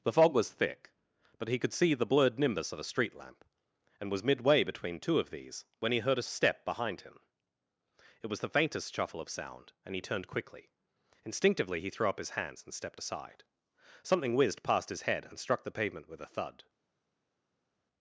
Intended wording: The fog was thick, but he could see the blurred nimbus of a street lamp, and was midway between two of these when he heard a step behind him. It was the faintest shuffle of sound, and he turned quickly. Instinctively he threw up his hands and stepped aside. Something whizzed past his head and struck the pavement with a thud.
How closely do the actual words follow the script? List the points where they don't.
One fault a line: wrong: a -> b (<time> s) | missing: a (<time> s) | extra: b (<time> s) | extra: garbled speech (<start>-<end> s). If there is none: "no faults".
no faults